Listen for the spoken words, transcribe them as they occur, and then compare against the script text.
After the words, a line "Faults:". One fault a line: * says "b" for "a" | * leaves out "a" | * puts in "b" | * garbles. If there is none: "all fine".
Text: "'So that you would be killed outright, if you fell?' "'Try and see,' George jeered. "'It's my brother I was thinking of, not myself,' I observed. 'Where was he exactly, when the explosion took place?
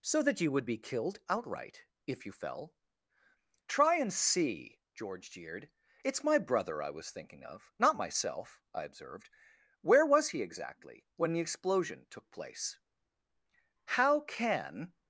"'So that you would be killed outright, if you fell?' "'Try and see,' George jeered. "'It's my brother I was thinking of, not myself,' I observed. 'Where was he exactly, when the explosion took place? "'How can
Faults:
* puts in "How can"